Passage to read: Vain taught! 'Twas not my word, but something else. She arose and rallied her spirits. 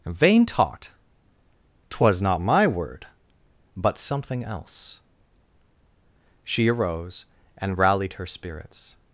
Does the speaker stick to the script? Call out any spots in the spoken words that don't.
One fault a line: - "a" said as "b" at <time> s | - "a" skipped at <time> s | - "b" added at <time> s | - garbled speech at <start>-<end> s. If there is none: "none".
none